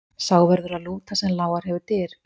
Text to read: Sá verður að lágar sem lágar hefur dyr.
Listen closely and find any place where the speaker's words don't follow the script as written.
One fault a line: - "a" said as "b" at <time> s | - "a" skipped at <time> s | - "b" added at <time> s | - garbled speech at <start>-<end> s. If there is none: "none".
- "lágar" said as "lúta" at 0.9 s